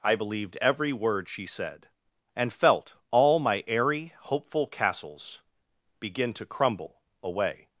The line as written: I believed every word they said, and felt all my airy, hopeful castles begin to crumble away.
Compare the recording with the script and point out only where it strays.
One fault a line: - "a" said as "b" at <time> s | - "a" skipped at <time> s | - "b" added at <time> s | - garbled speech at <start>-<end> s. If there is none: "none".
- "they" said as "she" at 1.3 s